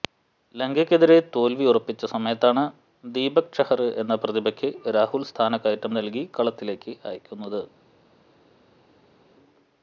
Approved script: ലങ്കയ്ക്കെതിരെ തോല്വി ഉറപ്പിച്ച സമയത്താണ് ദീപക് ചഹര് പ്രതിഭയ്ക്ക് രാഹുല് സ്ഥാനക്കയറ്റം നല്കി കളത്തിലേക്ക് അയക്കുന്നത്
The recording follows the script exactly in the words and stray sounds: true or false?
false